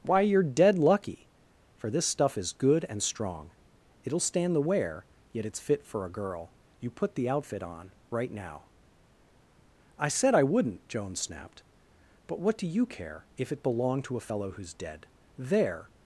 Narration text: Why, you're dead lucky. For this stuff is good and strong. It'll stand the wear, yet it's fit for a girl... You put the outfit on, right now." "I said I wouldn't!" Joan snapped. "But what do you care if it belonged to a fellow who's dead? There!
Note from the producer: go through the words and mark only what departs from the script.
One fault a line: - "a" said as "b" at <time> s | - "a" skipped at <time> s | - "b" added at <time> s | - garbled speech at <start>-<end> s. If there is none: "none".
none